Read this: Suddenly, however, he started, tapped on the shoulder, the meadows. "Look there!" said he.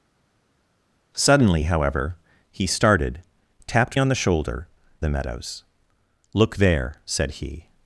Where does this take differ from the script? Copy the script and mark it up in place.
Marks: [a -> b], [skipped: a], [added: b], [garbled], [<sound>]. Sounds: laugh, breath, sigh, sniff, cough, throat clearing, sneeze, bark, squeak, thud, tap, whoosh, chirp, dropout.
Suddenly, however, he started, tapped on the shoulder, the meadows. "Look there!" said he.